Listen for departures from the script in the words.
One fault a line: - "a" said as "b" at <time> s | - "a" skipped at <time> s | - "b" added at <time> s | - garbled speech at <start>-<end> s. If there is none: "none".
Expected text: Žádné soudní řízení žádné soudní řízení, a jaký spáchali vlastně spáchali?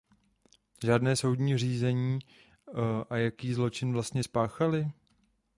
- "žádné soudní řízení" skipped at 2.2 s
- "spáchali" said as "zločin" at 3.5 s